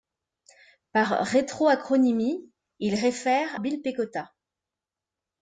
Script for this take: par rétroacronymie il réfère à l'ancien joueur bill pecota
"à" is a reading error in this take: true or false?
true